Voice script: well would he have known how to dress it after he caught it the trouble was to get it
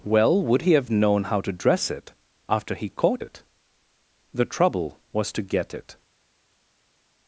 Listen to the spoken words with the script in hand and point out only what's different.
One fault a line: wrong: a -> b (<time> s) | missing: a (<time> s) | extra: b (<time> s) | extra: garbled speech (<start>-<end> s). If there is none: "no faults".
no faults